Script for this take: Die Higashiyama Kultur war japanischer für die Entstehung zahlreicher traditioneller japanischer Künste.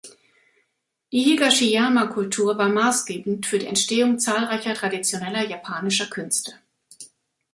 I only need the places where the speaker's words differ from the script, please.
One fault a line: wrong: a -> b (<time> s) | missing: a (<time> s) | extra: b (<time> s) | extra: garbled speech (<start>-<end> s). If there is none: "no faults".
wrong: japanischer -> maßgebend (2.7 s)